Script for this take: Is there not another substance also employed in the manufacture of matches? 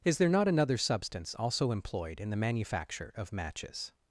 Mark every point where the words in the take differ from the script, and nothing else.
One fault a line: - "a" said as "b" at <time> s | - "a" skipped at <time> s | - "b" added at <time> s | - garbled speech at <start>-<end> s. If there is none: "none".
none